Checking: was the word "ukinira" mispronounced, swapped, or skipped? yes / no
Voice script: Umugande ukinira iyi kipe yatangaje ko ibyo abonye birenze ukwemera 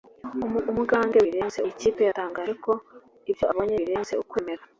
yes